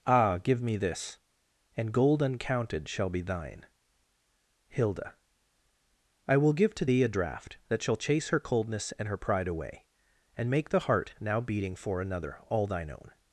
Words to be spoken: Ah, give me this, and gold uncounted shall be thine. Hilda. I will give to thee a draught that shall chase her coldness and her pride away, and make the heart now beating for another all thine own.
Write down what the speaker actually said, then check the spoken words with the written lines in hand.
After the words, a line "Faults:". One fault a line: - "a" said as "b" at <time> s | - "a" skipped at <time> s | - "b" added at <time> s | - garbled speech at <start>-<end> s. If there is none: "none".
Ah, give me this, and gold uncounted shall be thine. Hilda. I will give to thee a draught that shall chase her coldness and her pride away, and make the heart now beating for another all thine own.
Faults:
none